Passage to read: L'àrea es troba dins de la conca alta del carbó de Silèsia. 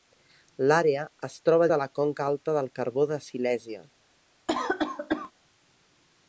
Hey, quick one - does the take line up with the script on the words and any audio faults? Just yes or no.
no